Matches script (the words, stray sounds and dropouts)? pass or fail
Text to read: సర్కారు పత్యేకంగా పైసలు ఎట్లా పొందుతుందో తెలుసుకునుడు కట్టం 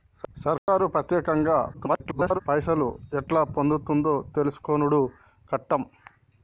fail